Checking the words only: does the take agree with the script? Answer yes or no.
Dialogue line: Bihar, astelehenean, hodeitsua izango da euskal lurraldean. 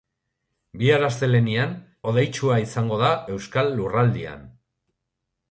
yes